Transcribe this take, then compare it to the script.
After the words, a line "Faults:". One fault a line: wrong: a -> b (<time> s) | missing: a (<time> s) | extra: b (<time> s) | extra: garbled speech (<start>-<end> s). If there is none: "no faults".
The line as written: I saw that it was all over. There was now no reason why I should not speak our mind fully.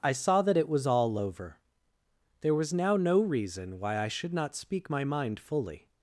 I saw that it was all over. There was now no reason why I should not speak my mind fully.
Faults:
wrong: our -> my (4.9 s)